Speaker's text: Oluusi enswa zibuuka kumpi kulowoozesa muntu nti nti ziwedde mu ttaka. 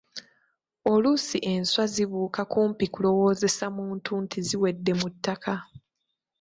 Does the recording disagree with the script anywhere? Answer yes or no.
yes